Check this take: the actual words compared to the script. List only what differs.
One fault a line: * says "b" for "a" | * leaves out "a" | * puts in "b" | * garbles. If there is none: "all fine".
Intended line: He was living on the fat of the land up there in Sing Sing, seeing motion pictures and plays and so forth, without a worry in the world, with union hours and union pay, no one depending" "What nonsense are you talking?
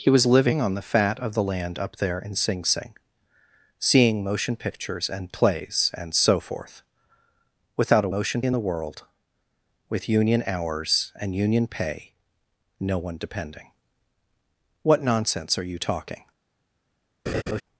* says "motion" for "worry"